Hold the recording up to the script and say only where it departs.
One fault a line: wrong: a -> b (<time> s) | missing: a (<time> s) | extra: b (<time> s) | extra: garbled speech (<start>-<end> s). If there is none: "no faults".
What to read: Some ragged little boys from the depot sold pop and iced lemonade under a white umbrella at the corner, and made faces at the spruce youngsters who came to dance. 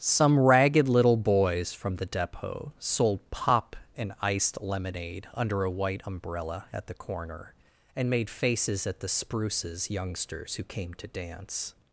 wrong: spruce -> spruces (9.1 s)